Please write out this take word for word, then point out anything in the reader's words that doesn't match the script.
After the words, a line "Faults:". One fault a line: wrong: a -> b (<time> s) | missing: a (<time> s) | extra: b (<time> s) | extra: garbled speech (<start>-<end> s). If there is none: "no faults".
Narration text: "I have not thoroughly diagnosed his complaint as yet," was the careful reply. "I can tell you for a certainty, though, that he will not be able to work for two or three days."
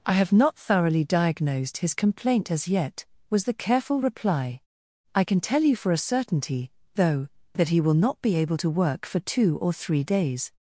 "I have not thoroughly diagnosed his complaint as yet," was the careful reply. "I can tell you for a certainty, though, that he will not be able to work for two or three days."
Faults:
no faults